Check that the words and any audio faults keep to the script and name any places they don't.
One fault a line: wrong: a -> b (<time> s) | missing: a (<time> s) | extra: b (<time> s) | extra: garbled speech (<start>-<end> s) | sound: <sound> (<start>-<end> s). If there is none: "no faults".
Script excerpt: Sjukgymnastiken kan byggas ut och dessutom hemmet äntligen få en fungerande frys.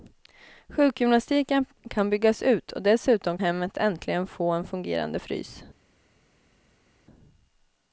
no faults